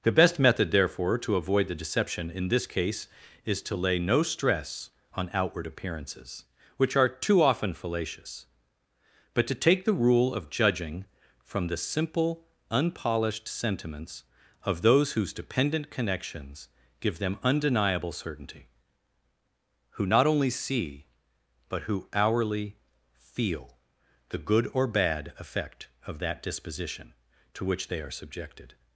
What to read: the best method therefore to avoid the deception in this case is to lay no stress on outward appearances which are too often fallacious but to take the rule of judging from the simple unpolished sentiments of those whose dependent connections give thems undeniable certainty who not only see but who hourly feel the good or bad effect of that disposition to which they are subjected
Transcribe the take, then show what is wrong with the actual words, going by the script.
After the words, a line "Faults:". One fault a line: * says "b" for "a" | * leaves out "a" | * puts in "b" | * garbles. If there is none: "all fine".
the best method therefore to avoid the deception in this case is to lay no stress on outward appearances which are too often fallacious but to take the rule of judging from the simple unpolished sentiments of those whose dependent connections give them undeniable certainty who not only see but who hourly feel the good or bad effect of that disposition to which they are subjected
Faults:
* says "them" for "thems"